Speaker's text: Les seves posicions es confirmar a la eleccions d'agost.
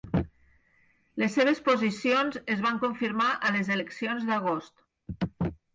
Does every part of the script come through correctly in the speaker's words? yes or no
no